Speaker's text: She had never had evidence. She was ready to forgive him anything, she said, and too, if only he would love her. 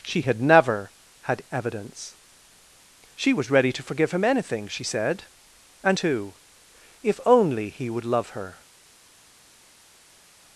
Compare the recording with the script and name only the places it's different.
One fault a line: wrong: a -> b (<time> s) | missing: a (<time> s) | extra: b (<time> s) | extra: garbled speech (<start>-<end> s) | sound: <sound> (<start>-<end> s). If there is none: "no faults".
no faults